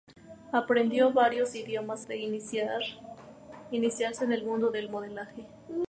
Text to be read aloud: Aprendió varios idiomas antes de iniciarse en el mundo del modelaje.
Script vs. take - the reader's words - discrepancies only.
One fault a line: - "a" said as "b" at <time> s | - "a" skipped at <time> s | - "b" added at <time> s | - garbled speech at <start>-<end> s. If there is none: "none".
- "antes" skipped at 2.1 s